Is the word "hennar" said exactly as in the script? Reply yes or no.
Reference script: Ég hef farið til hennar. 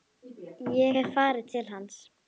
no